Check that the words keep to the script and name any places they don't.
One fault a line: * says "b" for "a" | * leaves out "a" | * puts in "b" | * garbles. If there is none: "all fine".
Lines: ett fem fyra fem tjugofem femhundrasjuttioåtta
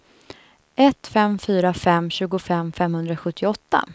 all fine